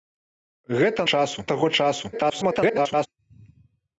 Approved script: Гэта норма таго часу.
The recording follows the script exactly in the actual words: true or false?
false